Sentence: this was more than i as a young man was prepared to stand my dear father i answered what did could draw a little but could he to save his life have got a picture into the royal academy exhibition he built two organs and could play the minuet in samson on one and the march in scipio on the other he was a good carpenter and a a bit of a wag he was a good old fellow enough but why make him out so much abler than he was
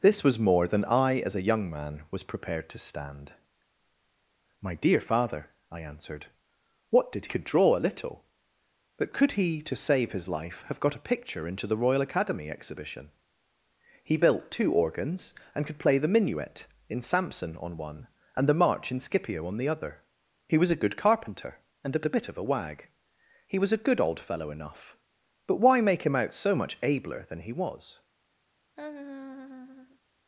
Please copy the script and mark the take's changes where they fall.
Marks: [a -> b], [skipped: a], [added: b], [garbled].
this was more than i as a young man was prepared to stand my dear father i answered what did could draw a little but could he to save his life have got a picture into the royal academy exhibition he built two organs and could play the minuet in samson on one and the march in scipio on the other he was a good carpenter and a a bit of a wag he was a good old fellow enough but why make him out so much abler than he was